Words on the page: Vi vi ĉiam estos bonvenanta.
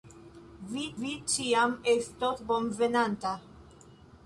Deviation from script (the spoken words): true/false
false